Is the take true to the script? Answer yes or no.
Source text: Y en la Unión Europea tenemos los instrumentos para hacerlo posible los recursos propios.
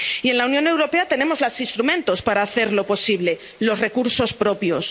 yes